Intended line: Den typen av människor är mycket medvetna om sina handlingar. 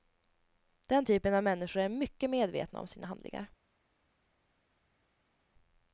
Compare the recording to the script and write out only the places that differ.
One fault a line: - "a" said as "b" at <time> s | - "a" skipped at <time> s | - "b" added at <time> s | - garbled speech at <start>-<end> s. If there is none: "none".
none